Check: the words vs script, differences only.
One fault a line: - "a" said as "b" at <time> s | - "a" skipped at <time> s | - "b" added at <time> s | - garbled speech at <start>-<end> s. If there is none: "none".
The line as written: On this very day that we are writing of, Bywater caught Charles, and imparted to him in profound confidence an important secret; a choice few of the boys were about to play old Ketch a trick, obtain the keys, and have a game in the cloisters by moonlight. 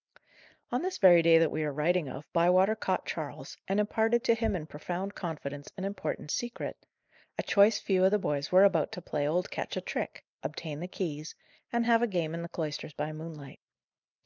none